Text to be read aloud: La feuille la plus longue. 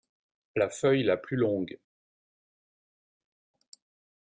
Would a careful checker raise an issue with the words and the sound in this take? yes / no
no